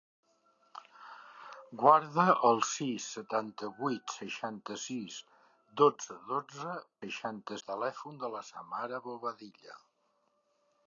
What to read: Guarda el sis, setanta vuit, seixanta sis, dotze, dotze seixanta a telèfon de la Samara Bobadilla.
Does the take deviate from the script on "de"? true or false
false